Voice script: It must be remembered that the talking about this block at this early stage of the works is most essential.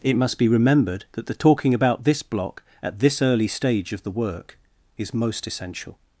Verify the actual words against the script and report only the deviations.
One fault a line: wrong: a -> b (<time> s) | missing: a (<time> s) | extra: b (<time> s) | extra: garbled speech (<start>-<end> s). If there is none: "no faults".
wrong: works -> work (4.1 s)